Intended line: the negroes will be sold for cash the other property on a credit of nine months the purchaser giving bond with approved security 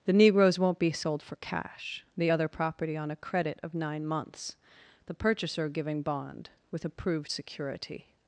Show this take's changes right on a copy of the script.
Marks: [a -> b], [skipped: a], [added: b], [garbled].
the negroes [will -> won't] be sold for cash the other property on a credit of nine months the purchaser giving bond with approved security